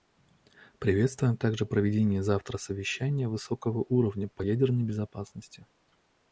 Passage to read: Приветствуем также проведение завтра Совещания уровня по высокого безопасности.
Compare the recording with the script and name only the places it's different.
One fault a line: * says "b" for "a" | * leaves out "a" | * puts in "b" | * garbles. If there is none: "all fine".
* puts in "высокого"
* says "ядерной" for "высокого"